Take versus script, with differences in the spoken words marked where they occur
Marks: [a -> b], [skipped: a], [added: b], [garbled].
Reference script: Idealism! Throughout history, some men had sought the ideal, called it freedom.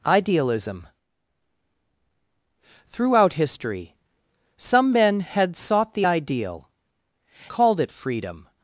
Idealism! Throughout history, some men had sought the ideal, called it freedom.